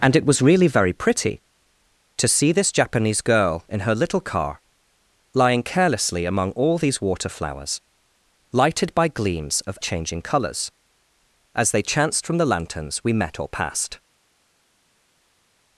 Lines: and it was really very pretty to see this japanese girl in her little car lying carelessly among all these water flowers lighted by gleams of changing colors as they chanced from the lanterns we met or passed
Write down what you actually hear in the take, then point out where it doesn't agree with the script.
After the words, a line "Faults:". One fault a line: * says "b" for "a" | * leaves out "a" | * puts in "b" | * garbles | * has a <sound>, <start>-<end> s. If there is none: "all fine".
and it was really very pretty to see this japanese girl in her little car lying carelessly among all these water flowers lighted by gleams of changing colors as they chanced from the lanterns we met or passed
Faults:
all fine